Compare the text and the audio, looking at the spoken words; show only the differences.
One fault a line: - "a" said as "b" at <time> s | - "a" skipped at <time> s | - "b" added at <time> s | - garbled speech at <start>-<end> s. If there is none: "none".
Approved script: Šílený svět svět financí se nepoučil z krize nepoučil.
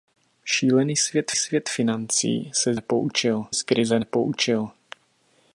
none